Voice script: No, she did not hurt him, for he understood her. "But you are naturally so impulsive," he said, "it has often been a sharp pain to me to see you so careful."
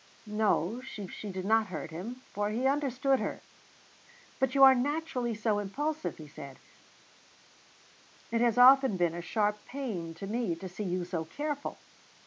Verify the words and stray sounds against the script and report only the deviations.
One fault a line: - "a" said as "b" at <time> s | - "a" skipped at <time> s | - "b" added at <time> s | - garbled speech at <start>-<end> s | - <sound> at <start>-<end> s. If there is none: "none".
- "she" added at 1.1 s